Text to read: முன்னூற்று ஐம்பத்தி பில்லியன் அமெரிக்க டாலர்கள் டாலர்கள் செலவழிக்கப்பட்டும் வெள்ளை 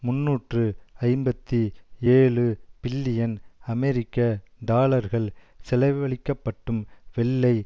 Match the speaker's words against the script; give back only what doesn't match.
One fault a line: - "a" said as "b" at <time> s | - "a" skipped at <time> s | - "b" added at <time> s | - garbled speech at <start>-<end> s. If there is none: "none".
- "ஏழு" added at 2.1 s
- "டாலர்கள்" skipped at 5.3 s